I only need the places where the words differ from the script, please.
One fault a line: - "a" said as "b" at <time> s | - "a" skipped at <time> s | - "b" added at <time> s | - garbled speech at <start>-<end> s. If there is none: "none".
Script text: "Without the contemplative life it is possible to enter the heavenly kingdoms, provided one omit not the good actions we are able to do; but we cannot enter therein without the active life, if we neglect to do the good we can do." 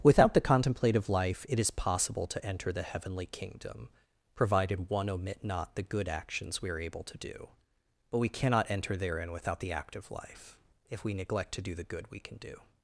- "kingdoms" said as "kingdom" at 3.3 s